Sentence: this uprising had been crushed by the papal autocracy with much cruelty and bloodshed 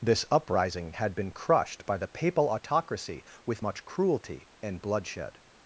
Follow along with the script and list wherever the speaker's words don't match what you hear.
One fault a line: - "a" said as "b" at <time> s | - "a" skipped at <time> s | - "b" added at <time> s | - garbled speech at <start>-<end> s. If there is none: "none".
none